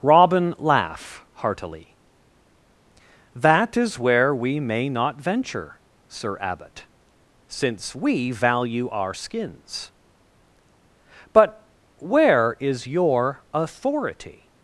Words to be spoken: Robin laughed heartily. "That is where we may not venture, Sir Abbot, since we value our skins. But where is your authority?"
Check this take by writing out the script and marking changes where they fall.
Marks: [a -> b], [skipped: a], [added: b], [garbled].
Robin [laughed -> laugh] heartily. "That is where we may not venture, Sir Abbot, since we value our skins. But where is your authority?"